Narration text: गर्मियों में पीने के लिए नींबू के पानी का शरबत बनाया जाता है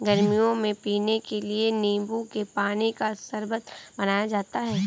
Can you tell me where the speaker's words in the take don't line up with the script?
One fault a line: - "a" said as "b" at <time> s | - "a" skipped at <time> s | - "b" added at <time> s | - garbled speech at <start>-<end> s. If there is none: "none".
none